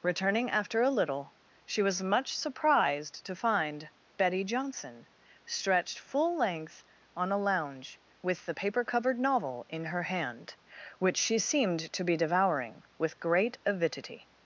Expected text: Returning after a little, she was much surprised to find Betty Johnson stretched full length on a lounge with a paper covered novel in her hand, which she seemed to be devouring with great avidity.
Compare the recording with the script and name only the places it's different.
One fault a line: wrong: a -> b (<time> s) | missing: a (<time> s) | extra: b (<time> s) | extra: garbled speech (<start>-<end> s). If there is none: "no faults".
wrong: a -> the (8.5 s)